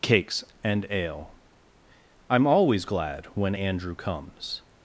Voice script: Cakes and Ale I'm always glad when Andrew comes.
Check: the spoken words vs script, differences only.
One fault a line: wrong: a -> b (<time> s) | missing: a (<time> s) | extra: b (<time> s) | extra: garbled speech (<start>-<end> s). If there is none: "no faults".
no faults